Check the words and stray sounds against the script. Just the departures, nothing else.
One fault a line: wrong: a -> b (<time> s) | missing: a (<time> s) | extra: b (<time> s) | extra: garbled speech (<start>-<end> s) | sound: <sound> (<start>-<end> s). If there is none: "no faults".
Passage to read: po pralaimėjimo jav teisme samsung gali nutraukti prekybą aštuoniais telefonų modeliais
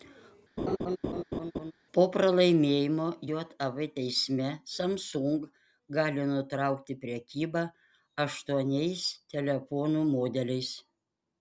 sound: laugh (0.6-1.7 s)